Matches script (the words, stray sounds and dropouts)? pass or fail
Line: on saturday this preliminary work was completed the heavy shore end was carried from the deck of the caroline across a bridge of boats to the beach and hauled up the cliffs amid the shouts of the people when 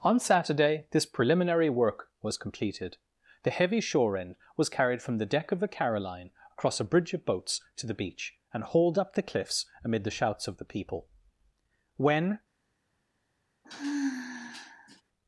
fail